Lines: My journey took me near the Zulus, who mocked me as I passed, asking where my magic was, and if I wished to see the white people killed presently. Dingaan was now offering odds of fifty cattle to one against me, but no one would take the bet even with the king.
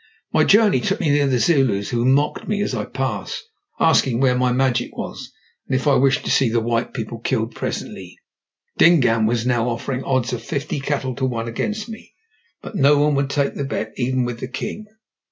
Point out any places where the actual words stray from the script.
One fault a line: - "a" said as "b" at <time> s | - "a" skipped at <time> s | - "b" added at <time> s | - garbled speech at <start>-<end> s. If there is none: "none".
none